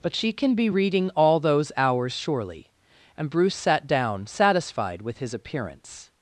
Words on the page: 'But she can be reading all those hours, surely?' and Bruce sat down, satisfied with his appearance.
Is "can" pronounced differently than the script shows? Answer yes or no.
no